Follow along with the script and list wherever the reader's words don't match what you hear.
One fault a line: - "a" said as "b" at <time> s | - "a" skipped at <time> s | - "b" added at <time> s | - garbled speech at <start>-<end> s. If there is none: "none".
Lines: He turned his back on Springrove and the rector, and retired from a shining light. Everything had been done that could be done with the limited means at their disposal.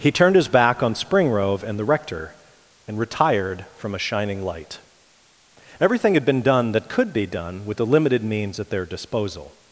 none